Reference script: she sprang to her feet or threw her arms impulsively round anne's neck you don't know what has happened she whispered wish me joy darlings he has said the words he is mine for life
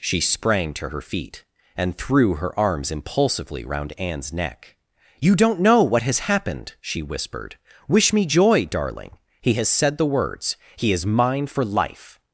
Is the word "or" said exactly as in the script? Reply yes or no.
no